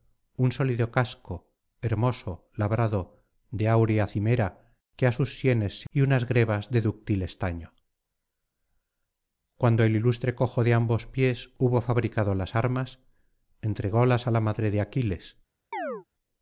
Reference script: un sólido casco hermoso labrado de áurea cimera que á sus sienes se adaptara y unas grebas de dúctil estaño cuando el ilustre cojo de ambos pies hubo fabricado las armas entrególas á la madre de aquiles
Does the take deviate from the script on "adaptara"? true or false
true